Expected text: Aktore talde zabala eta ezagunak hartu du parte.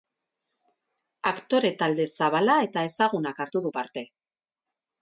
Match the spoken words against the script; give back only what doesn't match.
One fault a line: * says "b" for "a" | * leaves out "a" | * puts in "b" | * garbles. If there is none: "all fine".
all fine